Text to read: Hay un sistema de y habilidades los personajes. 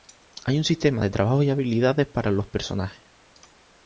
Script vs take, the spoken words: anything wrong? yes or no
yes